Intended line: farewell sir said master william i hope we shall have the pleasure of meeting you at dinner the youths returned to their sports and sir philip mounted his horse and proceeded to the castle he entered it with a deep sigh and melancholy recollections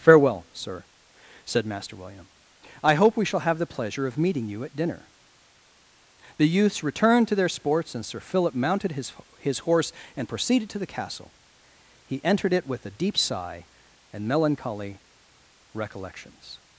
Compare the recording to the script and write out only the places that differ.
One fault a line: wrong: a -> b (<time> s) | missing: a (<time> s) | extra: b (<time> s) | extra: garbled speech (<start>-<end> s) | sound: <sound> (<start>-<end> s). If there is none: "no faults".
extra: his (9.4 s)